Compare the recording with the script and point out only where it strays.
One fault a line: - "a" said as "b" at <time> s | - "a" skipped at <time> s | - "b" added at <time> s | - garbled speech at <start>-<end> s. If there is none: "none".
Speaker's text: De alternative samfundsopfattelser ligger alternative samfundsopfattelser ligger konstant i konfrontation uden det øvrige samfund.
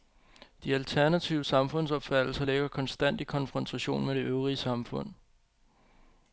- "alternative samfundsopfattelser ligger" skipped at 2.7 s
- "uden" said as "med" at 4.0 s